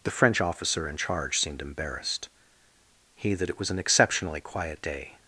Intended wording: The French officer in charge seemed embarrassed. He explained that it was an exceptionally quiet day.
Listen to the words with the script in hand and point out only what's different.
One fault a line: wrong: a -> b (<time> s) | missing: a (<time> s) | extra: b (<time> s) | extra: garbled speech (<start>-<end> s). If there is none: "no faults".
missing: explained (3.4 s)